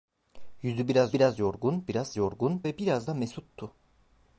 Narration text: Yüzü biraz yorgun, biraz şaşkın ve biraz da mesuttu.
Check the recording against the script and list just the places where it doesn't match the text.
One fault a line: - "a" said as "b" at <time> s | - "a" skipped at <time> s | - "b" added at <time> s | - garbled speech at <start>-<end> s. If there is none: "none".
- "biraz" added at 1.1 s
- "şaşkın" said as "yorgun" at 2.2 s